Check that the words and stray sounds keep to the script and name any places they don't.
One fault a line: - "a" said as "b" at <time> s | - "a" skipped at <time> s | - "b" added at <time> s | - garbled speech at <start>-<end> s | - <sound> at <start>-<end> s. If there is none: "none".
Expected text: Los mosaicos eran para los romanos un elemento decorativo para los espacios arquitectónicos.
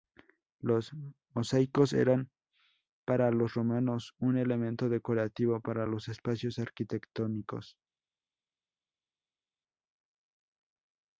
none